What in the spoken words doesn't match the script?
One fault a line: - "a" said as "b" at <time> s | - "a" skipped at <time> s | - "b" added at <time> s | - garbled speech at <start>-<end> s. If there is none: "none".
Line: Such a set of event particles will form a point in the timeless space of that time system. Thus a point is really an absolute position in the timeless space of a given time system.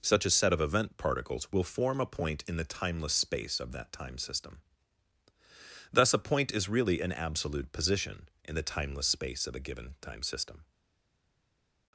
none